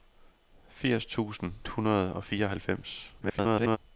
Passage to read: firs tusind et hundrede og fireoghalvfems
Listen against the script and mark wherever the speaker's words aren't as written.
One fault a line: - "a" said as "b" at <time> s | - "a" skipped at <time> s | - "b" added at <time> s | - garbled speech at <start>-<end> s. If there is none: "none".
- "et" skipped at 1.5 s
- garbled speech at 3.2-3.8 s